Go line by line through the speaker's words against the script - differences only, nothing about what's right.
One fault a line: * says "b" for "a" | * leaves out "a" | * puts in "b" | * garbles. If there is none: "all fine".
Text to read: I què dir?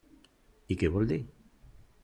* puts in "vol"